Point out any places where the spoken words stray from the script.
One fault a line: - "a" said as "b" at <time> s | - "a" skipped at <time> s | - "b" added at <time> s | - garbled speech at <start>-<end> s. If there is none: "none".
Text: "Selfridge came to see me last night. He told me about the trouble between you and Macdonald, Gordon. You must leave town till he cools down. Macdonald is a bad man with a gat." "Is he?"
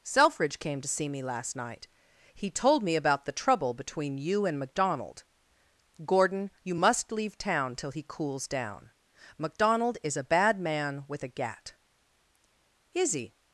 none